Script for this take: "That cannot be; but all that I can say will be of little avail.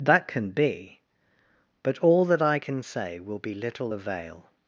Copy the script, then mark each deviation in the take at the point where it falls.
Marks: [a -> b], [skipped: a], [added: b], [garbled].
"That [cannot -> can] be; but all that I can say will be [skipped: of] little avail.